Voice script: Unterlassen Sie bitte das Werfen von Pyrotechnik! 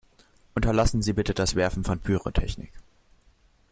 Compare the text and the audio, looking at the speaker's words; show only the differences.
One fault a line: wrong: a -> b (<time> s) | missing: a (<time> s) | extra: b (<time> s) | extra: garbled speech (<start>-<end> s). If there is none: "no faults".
no faults